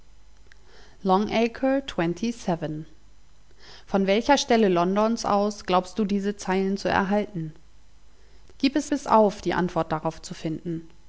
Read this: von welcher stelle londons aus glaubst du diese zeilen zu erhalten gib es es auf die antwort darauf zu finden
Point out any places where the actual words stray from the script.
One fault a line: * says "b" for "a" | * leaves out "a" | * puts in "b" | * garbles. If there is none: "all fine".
all fine